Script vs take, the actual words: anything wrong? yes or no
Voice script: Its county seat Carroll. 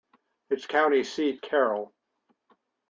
no